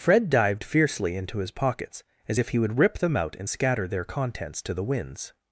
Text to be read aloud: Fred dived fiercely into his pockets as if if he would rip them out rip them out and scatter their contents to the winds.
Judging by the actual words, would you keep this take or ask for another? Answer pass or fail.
fail